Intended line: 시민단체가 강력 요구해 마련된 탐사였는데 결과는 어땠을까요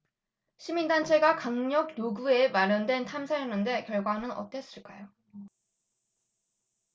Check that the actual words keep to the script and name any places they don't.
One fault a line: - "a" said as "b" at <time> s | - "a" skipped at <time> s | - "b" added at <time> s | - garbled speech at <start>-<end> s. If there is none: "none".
none